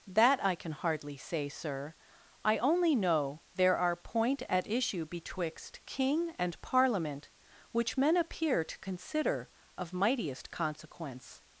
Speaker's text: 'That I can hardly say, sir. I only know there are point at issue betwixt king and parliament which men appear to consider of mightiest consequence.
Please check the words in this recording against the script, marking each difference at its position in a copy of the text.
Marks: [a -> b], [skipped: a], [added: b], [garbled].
'That I can hardly say, sir. I only know there are point at issue betwixt king and parliament which men appear to consider of mightiest consequence.